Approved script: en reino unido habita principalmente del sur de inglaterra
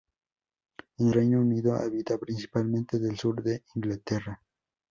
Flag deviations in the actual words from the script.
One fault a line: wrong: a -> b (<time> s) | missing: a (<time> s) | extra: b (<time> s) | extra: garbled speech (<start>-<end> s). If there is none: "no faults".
no faults